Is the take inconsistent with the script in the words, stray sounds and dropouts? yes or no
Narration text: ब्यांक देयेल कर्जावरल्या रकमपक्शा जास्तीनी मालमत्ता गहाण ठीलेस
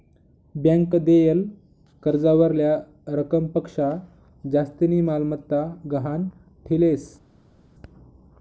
no